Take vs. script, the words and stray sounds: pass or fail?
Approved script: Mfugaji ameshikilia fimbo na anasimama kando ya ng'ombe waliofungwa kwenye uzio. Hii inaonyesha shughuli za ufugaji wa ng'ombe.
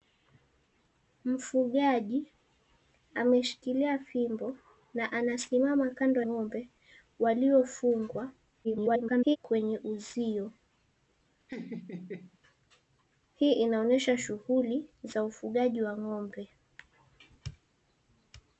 fail